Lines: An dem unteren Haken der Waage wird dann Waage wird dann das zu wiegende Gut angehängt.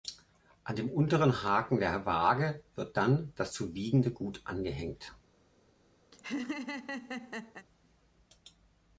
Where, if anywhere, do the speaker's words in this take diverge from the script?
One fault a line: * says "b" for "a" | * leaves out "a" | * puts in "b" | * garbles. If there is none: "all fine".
* leaves out "Waage wird dann"